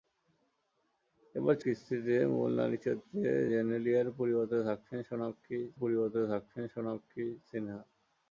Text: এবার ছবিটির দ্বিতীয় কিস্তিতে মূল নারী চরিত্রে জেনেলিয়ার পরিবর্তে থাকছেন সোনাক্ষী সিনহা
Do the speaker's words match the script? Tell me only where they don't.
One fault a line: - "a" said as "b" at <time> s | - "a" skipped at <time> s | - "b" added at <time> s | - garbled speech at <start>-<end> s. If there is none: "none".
- "ছবিটির দ্বিতীয়" skipped at 1.6 s
- "পরিবর্তে থাকছেন সোনাক্ষী" added at 5.8 s